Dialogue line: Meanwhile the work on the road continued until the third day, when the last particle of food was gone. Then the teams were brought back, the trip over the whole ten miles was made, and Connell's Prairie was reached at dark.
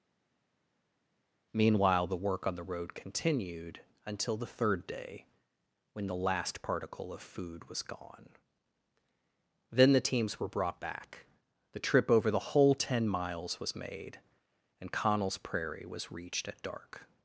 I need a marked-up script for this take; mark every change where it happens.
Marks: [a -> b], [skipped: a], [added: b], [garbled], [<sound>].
Meanwhile the work on the road continued until the third day, when the last particle of food was gone. Then the teams were brought back, the trip over the whole ten miles was made, and Connell's Prairie was reached at dark.